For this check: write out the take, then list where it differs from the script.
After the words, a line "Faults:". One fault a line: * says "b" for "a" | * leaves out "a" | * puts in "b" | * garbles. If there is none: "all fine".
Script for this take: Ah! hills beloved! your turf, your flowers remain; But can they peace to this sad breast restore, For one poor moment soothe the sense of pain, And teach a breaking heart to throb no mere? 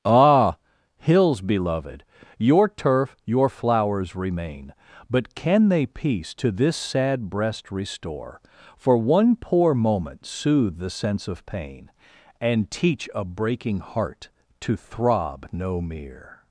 Ah! hills beloved! your turf, your flowers remain; But can they peace to this sad breast restore, For one poor moment soothe the sense of pain, And teach a breaking heart to throb no mere?
Faults:
all fine